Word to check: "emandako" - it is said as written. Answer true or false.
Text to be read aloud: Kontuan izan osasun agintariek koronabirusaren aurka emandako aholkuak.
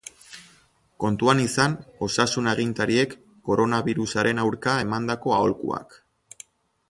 true